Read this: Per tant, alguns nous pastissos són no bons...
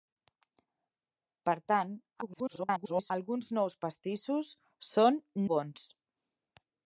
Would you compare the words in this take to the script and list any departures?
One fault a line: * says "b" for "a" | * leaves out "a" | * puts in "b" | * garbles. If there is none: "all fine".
* garbles
* leaves out "no"